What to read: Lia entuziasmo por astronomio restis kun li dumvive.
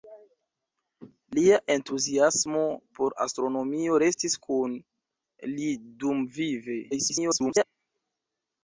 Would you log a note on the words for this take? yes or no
yes